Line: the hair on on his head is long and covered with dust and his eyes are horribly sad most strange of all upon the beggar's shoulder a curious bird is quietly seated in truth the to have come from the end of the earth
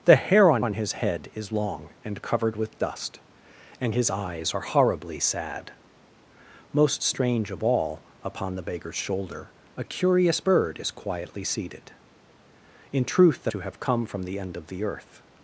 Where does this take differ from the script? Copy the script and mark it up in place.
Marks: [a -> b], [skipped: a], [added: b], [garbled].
the hair on on his head is long and covered with dust and his eyes are horribly sad most strange of all upon the beggar's shoulder a curious bird is quietly seated in truth the to have come from the end of the earth